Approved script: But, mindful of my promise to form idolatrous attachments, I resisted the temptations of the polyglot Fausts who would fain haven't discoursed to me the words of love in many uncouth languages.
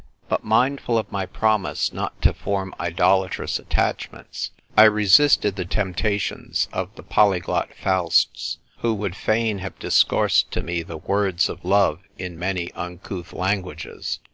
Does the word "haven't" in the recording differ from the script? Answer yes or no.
yes